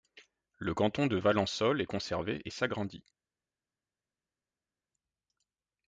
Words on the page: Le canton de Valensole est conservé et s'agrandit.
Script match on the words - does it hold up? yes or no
yes